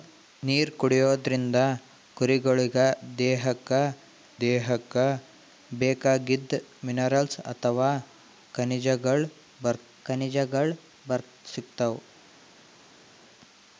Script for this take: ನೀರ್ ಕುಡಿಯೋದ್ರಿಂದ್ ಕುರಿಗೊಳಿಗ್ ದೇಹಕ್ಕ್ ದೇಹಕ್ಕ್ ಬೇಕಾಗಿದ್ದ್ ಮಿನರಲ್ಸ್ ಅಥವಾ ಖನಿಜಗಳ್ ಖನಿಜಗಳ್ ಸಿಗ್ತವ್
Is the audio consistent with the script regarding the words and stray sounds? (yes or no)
yes